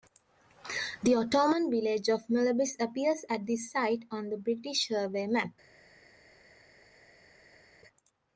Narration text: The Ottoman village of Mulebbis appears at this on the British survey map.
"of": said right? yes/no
yes